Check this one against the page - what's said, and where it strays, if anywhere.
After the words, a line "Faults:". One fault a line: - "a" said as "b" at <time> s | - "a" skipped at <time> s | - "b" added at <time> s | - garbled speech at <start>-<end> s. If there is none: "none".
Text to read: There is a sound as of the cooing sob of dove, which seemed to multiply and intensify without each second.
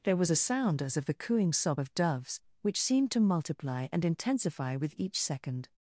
There was a sound as of the cooing sob of doves, which seemed to multiply and intensify with each second.
Faults:
- "is" said as "was" at 0.2 s
- "dove" said as "doves" at 1.9 s
- "without" said as "with" at 4.7 s